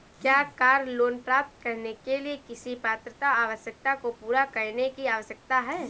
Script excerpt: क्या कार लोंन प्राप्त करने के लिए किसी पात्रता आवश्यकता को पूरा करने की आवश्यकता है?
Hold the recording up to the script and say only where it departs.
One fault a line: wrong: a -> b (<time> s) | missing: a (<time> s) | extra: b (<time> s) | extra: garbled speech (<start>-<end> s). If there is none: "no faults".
no faults